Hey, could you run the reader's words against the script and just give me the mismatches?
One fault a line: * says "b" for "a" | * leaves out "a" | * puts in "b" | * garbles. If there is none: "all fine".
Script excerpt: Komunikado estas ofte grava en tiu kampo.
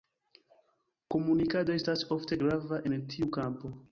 all fine